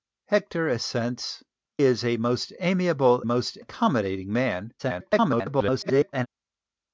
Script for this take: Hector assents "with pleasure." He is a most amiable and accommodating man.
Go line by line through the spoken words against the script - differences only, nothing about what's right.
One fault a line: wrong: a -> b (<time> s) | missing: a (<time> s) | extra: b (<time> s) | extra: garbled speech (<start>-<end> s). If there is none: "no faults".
missing: with pleasure He (1.4 s)
wrong: and -> most (3.2 s)
extra: garbled speech (4.8-6.3 s)